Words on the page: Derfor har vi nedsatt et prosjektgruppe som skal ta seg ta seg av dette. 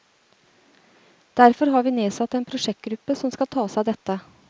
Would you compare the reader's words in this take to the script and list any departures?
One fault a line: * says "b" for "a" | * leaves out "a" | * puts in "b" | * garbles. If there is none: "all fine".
* says "en" for "et"
* leaves out "ta seg"